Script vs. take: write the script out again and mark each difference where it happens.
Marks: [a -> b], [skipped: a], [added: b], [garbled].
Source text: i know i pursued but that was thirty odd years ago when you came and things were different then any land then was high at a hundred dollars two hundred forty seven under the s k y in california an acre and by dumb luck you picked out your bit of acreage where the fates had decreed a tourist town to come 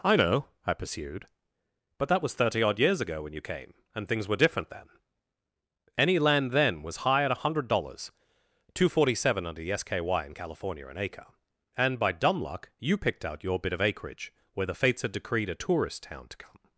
i know i pursued but that was thirty odd years ago when you came and things were different then any land then was high at a hundred dollars two [skipped: hundred] forty seven under the s k y in california an acre and by dumb luck you picked out your bit of acreage where the fates had decreed a tourist town to come